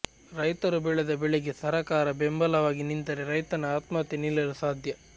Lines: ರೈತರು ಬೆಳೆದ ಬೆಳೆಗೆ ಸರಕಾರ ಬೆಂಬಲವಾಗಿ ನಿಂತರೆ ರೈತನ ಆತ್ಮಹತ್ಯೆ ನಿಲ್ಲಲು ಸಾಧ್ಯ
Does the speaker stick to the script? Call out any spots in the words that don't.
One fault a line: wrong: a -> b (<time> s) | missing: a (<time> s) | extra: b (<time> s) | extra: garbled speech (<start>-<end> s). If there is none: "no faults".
no faults